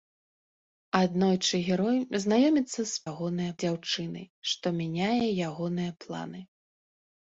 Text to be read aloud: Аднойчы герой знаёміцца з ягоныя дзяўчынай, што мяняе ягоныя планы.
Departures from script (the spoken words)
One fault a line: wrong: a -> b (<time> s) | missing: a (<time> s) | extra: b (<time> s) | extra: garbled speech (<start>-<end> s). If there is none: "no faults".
no faults